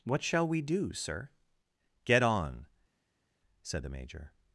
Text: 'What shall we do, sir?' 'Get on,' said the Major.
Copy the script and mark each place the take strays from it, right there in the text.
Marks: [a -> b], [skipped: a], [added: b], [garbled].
'What shall we do, sir?' 'Get on,' said the Major.